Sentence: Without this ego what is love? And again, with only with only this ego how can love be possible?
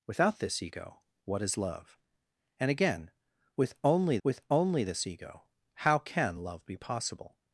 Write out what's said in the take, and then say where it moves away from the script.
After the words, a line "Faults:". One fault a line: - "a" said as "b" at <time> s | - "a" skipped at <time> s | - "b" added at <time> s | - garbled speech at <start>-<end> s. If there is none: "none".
Without this ego what is love? And again, with only with only this ego how can love be possible?
Faults:
none